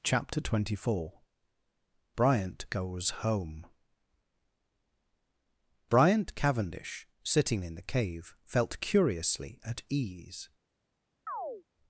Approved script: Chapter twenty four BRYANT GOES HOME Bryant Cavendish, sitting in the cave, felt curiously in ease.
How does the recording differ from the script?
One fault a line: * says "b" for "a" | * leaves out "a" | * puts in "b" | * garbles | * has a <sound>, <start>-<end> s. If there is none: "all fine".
* says "at" for "in"
* has a chirp, 11.3-11.6 s